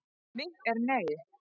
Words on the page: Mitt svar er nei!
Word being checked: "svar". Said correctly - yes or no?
no